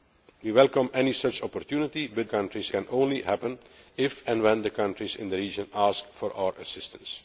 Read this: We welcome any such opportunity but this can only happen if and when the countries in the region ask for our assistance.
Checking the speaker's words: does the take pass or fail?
fail